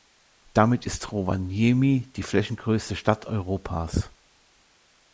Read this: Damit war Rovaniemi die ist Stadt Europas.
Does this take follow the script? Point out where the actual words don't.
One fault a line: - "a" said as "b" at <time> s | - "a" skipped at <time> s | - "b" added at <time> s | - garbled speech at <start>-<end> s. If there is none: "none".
- "war" said as "ist" at 0.8 s
- "ist" said as "flächengrößte" at 2.2 s